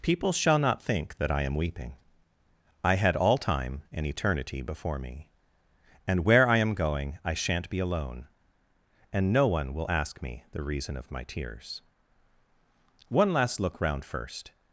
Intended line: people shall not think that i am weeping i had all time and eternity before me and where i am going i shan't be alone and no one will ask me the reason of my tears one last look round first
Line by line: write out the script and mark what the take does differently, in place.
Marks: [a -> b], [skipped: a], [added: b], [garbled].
people shall not think that i am weeping i had all time and eternity before me and where i am going i shan't be alone and no one will ask me the reason of my tears one last look round first